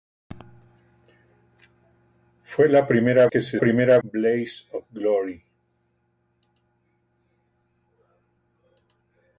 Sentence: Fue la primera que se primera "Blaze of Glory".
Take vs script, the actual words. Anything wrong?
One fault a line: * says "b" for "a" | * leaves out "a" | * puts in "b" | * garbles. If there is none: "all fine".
all fine